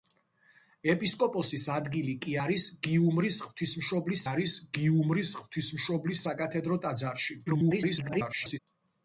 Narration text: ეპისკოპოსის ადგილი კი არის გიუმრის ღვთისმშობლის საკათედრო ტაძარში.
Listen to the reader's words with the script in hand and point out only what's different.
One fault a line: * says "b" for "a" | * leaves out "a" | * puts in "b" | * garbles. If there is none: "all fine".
* puts in "არის გიუმრის ღვთისმშობლის"
* garbles